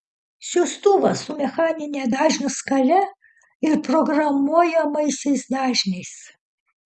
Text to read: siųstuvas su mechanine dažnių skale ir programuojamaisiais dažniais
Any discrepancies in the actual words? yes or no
no